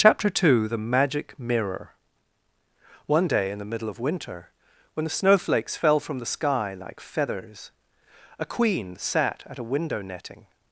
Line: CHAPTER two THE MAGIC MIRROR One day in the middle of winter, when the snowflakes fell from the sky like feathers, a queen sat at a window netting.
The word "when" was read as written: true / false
true